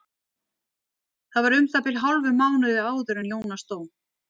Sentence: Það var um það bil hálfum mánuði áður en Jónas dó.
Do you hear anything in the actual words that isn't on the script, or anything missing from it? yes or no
no